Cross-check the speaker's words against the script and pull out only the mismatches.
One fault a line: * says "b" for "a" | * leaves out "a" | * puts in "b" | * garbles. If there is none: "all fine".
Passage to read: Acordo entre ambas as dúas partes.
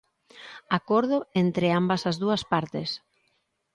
all fine